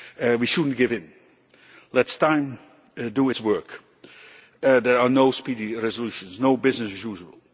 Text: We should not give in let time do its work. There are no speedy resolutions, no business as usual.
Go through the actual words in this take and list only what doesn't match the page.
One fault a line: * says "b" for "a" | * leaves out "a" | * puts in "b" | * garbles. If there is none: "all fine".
all fine